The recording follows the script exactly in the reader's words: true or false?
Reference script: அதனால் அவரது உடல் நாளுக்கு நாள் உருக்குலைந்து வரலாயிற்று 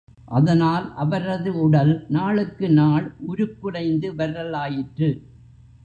true